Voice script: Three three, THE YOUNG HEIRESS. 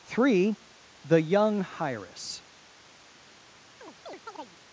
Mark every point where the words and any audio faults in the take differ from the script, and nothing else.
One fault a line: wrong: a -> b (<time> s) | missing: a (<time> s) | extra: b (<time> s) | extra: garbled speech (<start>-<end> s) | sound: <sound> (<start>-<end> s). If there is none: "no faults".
missing: three (0.6 s)
sound: chirp (3.8-4.6 s)